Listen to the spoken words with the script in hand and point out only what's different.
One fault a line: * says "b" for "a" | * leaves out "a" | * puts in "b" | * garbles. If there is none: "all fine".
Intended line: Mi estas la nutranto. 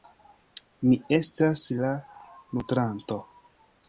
all fine